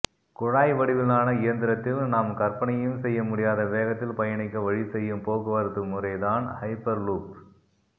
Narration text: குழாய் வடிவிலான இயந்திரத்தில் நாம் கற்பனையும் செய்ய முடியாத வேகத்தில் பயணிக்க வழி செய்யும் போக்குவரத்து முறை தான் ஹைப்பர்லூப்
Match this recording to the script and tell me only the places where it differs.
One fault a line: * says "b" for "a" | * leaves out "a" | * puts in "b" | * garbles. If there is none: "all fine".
all fine